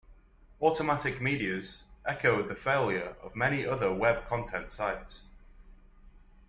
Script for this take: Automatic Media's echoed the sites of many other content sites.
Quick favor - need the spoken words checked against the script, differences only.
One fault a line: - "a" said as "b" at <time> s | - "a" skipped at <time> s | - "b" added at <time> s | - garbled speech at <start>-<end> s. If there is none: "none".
- "sites" said as "failure" at 2.5 s
- "web" added at 3.9 s